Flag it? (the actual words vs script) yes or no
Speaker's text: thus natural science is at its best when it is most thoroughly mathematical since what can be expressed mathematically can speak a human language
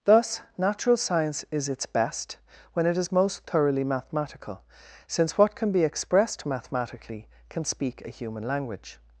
yes